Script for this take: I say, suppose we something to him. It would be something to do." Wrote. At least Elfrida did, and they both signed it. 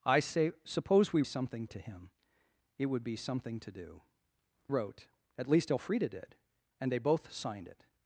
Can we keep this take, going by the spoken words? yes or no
yes